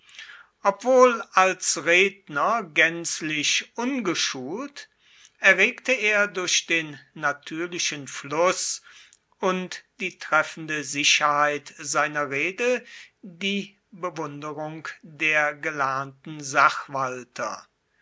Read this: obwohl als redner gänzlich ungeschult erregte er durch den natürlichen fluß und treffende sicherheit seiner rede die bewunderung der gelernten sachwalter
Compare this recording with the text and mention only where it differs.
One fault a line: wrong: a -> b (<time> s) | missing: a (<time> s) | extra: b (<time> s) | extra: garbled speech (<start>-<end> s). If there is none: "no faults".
extra: die (10.0 s)